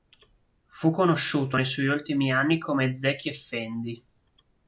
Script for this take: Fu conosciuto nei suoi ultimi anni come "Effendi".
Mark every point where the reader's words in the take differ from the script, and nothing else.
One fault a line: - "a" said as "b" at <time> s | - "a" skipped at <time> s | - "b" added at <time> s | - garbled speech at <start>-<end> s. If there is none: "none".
- "Zeki" added at 2.9 s